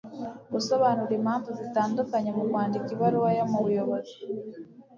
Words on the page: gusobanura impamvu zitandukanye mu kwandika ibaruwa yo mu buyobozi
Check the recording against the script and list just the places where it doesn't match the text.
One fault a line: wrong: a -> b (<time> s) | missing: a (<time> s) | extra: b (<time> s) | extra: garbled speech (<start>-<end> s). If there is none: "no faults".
no faults